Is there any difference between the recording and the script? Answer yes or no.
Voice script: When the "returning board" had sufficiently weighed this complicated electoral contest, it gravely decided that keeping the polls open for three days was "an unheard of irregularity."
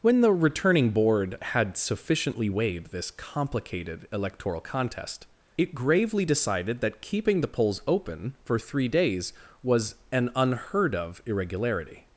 no